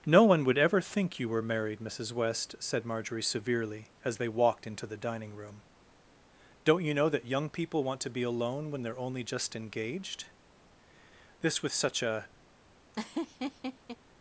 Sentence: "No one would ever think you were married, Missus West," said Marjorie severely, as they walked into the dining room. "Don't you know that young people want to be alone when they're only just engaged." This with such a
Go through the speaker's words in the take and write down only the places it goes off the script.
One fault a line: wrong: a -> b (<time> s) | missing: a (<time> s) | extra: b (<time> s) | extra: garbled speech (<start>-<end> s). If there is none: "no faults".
no faults